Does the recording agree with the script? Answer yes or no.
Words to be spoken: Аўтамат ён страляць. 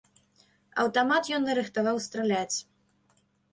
no